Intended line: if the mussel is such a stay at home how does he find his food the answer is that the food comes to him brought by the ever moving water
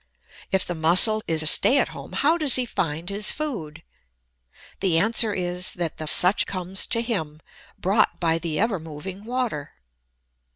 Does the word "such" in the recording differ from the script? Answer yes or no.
yes